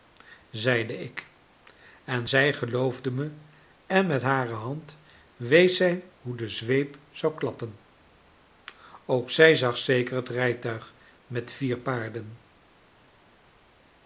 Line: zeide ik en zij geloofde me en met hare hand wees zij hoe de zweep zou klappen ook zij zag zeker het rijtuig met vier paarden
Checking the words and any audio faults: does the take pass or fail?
pass